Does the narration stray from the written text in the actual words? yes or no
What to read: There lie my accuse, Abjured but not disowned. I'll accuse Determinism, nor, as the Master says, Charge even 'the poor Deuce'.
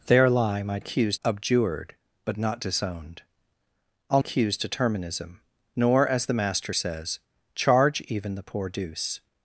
no